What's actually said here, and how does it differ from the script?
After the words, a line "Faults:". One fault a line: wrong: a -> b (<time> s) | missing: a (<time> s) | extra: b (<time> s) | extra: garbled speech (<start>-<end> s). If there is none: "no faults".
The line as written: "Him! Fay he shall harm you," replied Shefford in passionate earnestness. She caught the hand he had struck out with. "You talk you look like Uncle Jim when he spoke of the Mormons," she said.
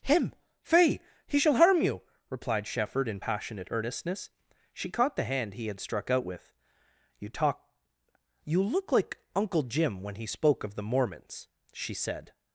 "Him! Fay he shall harm you," replied Shefford in passionate earnestness. She caught the hand he had struck out with. "You talk you look like Uncle Jim when he spoke of the Mormons," she said.
Faults:
no faults